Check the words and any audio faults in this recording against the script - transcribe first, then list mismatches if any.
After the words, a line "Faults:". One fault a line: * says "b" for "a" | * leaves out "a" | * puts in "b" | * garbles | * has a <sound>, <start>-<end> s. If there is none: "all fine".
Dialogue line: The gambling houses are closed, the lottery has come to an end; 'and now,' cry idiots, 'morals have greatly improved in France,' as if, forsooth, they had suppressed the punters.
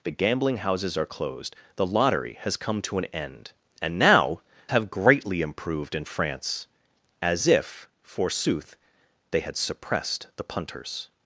The gambling houses are closed, the lottery has come to an end; 'and now,' have greatly improved in France,' as if, forsooth, they had suppressed the punters.
Faults:
* leaves out "cry idiots morals"